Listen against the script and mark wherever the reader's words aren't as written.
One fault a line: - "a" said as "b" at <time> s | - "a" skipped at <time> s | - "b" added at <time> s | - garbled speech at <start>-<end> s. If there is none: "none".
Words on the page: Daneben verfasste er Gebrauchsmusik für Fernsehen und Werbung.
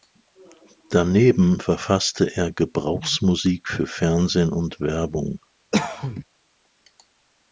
none